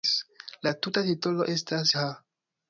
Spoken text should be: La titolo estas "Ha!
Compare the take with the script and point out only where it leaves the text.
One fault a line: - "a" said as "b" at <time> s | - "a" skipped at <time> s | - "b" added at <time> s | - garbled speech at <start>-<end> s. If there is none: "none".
- "tuta" added at 0.8 s